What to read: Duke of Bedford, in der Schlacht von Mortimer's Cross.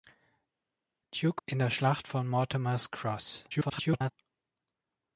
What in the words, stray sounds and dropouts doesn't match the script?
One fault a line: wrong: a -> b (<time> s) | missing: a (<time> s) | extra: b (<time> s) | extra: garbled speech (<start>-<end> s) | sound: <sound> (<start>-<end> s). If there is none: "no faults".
missing: of Bedford (1.4 s)
extra: garbled speech (3.5-4.1 s)